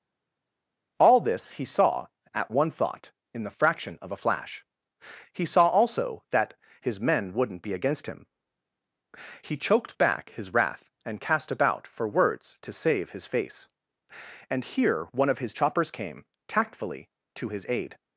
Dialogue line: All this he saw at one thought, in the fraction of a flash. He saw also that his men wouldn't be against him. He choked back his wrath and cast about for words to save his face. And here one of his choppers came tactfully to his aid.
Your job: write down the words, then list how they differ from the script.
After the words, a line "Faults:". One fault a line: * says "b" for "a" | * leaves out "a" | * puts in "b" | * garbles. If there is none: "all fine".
All this he saw at one thought, in the fraction of a flash. He saw also that his men wouldn't be against him. He choked back his wrath and cast about for words to save his face. And here one of his choppers came tactfully to his aid.
Faults:
all fine